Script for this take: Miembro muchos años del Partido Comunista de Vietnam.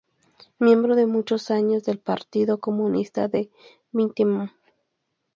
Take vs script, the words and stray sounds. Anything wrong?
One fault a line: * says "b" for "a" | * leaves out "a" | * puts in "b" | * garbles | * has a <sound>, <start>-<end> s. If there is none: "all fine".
* puts in "de"